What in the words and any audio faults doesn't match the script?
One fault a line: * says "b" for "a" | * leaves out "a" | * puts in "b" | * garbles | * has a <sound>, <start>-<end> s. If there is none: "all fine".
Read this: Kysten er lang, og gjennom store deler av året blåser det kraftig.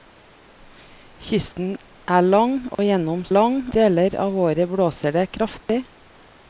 * has a dropout, 2.7-2.8 s
* says "lang" for "store"
* has a dropout, 5.6-5.7 s